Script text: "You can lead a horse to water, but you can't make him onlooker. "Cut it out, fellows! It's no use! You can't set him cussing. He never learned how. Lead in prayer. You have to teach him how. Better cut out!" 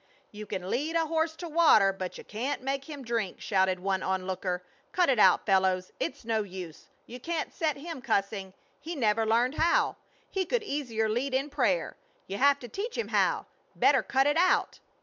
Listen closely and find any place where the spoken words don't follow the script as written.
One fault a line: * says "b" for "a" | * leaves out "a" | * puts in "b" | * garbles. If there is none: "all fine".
* puts in "drink shouted one"
* puts in "He could easier"
* puts in "it"